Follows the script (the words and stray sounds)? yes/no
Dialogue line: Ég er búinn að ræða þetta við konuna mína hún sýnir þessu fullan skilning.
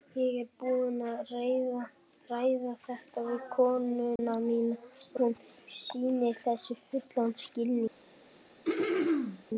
no